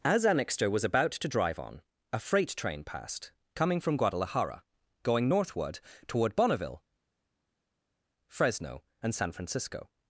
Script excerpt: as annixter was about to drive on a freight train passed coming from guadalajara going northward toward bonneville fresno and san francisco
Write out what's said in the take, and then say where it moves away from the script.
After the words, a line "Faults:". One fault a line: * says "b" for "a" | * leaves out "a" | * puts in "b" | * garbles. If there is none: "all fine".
as annixter was about to drive on a freight train passed coming from guadalajara going northward toward bonneville fresno and san francisco
Faults:
all fine